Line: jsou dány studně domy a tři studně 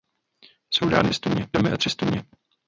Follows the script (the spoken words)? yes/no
yes